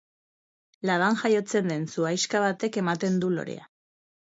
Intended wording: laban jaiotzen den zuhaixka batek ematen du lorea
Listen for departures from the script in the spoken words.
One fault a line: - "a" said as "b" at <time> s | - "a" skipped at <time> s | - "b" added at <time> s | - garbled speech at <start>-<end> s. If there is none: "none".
none